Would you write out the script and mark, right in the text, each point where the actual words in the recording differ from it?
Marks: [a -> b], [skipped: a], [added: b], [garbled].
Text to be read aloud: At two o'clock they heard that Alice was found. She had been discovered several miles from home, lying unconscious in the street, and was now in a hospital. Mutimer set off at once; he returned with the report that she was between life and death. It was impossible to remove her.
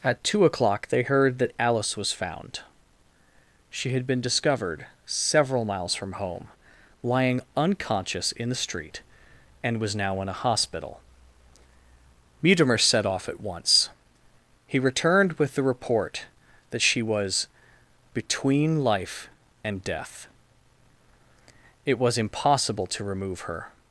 At two o'clock they heard that Alice was found. She had been discovered several miles from home, lying unconscious in the street, and was now in a hospital. Mutimer set off at once; he returned with the report that she was between life and death. It was impossible to remove her.